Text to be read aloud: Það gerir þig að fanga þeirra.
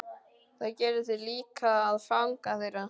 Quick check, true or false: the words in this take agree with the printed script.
false